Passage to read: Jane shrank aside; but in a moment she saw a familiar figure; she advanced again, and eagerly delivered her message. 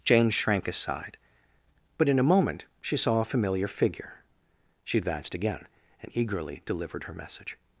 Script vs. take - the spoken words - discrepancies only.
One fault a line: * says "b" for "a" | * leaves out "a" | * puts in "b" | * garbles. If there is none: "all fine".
all fine